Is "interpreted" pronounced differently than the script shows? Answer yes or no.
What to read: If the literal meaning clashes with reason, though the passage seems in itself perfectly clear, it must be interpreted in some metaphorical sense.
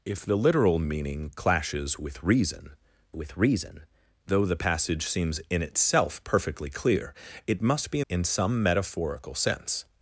yes